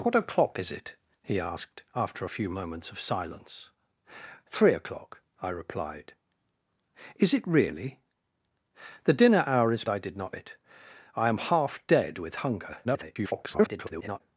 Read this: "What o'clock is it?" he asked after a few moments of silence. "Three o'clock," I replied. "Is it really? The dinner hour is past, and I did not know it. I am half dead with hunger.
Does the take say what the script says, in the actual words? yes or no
no